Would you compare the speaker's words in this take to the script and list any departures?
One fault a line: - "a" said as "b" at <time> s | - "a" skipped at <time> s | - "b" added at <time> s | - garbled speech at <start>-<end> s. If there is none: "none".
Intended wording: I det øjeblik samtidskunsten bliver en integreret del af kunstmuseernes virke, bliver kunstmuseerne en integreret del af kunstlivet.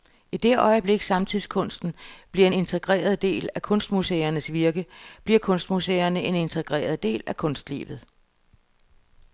none